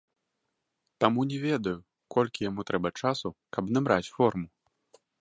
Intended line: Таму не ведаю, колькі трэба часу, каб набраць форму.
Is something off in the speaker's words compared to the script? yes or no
yes